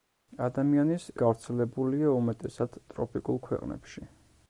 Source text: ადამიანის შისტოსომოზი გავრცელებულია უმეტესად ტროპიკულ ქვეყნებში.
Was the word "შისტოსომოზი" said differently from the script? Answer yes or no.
yes